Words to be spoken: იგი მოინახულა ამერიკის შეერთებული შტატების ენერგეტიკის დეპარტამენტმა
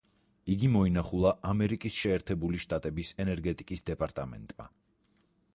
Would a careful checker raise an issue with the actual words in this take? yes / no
no